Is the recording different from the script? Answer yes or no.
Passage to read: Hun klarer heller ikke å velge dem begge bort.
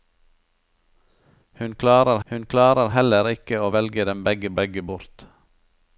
yes